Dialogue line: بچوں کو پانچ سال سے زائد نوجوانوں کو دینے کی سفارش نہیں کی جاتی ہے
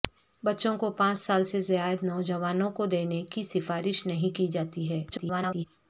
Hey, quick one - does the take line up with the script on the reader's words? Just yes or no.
no